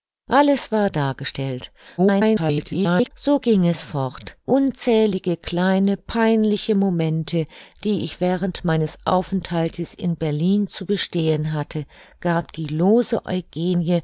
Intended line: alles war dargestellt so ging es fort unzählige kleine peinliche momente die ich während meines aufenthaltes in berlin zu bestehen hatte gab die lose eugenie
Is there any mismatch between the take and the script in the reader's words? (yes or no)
yes